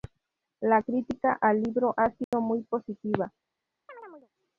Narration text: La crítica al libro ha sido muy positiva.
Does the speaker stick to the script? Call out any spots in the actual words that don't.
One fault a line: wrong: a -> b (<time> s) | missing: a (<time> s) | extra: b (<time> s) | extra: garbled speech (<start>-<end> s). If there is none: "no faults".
no faults